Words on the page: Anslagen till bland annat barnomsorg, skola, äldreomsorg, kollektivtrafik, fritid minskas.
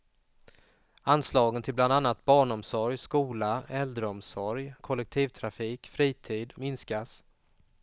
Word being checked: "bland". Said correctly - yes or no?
yes